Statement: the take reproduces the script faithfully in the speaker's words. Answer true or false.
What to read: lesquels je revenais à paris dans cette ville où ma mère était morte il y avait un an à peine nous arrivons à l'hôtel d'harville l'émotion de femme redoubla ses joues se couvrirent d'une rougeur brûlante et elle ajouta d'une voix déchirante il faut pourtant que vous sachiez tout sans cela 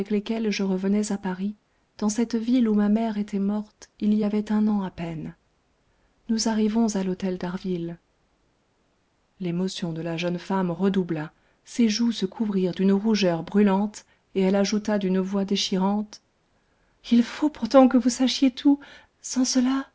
false